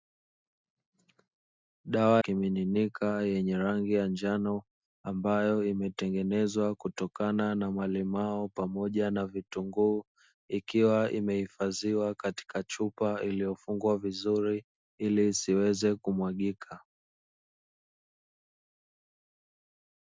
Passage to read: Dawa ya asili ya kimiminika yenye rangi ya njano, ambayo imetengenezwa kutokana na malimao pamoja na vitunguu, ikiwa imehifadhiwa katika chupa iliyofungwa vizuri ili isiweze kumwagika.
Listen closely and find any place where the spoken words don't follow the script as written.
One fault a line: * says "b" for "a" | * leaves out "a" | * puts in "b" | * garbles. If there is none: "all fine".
* leaves out "ya asili ya"